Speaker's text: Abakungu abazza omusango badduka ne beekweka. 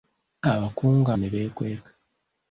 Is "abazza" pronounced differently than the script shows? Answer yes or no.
yes